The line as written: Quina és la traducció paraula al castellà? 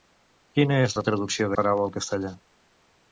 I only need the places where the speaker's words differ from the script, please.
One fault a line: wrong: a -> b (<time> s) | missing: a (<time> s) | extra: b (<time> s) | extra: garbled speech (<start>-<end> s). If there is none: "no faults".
no faults